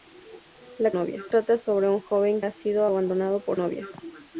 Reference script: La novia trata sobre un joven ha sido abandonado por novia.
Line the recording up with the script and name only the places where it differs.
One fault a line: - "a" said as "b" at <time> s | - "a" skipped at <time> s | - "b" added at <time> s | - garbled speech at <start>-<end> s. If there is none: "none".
none